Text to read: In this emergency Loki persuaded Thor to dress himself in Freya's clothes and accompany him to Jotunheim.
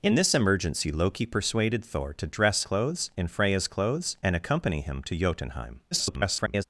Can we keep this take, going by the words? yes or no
no